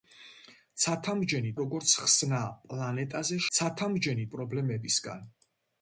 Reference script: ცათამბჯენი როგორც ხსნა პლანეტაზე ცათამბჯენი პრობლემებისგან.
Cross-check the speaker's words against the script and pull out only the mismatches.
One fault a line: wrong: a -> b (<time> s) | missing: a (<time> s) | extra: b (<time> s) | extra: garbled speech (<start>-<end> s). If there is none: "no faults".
no faults